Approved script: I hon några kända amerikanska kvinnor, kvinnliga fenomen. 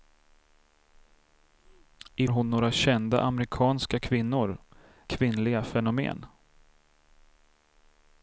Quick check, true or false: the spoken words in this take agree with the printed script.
true